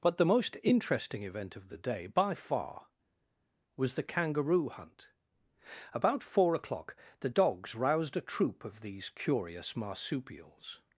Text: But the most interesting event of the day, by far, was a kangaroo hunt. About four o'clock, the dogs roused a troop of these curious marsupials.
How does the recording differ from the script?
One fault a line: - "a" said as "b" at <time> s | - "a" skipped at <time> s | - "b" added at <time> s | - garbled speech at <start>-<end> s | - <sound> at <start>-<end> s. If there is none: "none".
- "a" said as "the" at 3.9 s